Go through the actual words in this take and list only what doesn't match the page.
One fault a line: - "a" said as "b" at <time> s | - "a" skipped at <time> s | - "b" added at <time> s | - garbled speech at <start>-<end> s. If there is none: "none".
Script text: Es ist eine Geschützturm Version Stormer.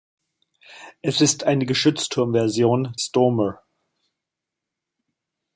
none